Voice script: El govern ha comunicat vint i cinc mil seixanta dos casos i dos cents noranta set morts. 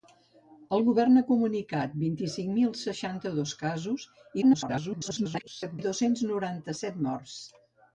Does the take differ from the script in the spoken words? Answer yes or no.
yes